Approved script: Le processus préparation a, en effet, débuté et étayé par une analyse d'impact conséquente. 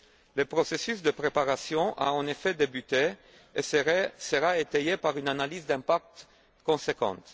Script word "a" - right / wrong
right